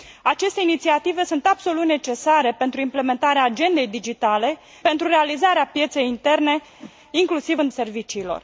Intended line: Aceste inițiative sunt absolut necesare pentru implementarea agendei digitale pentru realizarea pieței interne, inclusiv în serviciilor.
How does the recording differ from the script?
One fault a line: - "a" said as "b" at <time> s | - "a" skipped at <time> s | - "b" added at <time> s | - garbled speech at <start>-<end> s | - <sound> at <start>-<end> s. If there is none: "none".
- whoosh at 6.8-6.9 s